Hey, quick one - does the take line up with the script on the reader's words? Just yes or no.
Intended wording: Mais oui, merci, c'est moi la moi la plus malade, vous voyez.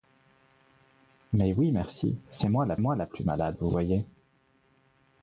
yes